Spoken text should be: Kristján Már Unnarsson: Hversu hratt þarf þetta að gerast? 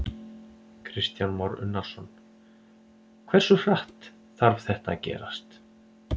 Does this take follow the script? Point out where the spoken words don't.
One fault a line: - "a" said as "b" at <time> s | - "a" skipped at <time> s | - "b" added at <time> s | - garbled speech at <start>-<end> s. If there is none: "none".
none